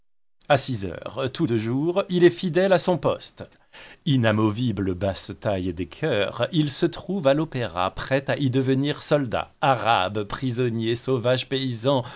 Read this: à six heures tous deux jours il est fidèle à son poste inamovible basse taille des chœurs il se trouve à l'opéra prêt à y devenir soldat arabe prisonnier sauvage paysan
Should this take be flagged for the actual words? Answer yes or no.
no